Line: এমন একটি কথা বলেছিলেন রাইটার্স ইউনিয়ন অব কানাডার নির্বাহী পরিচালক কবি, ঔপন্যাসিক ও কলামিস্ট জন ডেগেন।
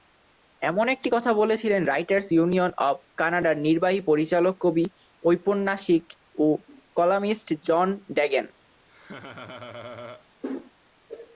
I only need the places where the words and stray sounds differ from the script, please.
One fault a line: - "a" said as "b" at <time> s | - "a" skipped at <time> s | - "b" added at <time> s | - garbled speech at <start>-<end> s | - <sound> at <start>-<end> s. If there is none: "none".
- laugh at 8.9-10.3 s